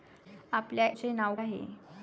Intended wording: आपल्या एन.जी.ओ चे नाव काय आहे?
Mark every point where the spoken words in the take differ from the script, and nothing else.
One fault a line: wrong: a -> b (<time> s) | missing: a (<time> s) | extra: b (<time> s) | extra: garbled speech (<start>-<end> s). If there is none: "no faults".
missing: एन.जी.ओ (0.9 s)
missing: काय (1.4 s)